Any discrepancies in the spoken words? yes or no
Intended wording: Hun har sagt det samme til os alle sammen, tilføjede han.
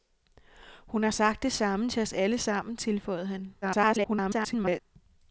yes